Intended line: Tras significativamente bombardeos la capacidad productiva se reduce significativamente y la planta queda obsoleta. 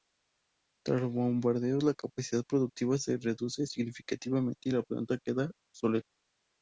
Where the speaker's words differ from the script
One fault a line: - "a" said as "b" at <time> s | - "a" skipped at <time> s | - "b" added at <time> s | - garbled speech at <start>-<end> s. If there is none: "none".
- "significativamente" said as "los" at 1.0 s